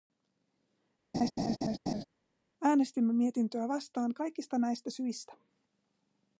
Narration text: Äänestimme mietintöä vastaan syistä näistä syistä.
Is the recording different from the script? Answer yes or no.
yes